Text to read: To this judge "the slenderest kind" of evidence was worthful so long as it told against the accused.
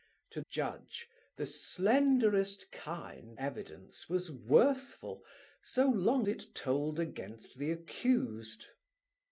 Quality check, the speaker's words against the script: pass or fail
fail